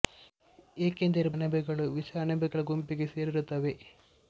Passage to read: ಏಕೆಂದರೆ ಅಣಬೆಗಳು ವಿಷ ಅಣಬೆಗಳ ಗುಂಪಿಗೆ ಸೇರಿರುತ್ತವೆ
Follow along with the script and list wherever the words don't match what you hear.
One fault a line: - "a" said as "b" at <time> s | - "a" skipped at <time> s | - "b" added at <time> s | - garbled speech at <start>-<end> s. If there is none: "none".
none